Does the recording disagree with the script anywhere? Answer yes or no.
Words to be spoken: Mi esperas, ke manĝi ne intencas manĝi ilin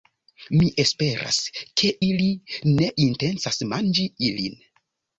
yes